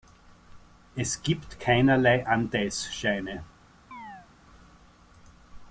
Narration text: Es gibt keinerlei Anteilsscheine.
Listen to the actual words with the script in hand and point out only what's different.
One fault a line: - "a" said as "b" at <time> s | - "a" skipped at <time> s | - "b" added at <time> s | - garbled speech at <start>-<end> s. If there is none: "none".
none